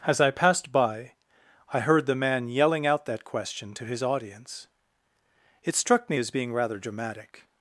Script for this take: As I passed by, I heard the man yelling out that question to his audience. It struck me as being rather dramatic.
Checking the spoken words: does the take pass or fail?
pass